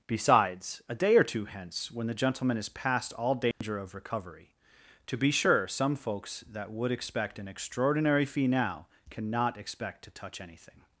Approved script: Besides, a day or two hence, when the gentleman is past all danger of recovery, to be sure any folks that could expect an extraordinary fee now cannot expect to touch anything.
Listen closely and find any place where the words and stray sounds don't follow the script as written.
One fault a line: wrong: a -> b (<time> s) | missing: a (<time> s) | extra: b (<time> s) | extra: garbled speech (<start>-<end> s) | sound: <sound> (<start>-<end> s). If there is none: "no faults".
sound: dropout (3.5-3.6 s)
wrong: any -> some (5.7 s)
wrong: could -> would (6.7 s)